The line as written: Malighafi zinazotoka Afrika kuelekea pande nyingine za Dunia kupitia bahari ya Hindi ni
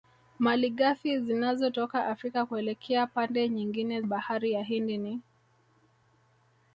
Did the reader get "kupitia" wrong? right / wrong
wrong